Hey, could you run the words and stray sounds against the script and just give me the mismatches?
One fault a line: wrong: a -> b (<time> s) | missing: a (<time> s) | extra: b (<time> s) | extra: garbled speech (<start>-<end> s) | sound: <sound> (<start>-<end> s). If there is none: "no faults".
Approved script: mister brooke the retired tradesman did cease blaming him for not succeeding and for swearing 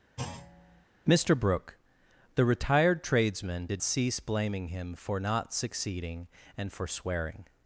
sound: thud (0.2-0.8 s)